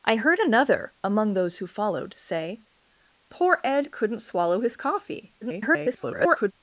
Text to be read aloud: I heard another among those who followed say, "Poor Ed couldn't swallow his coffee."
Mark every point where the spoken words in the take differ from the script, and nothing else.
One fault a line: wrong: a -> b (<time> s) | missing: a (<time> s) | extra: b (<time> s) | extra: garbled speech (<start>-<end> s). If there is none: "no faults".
extra: garbled speech (5.4-6.5 s)